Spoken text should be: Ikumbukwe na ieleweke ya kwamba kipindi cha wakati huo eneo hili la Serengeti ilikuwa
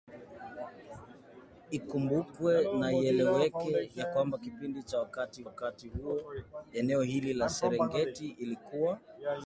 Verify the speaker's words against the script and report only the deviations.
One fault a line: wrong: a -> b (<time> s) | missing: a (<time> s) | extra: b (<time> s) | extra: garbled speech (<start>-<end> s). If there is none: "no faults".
extra: wakati (5.4 s)